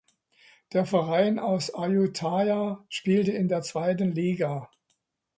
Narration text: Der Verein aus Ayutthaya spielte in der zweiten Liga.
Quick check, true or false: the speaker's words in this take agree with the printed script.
true